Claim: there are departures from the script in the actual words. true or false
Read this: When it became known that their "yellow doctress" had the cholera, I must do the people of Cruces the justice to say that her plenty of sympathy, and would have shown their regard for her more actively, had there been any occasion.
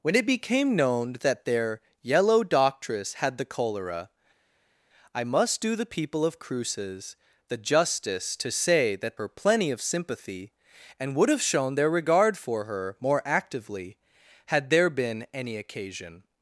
false